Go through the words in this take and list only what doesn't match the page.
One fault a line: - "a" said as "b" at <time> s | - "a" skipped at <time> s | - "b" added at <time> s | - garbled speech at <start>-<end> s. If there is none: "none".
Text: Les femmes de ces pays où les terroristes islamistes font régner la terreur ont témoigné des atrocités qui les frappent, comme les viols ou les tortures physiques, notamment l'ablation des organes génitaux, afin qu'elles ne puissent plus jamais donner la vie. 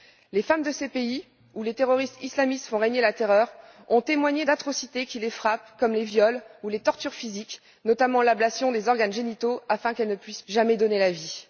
- "des" skipped at 4.5 s
- "plus" skipped at 10.4 s